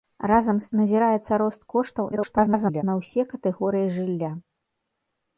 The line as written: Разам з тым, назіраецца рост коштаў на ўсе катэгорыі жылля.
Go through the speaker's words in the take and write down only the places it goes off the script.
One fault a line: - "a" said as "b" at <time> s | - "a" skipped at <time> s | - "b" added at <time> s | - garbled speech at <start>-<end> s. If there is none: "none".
- "тым" skipped at 0.7 s
- garbled speech at 2.1-2.8 s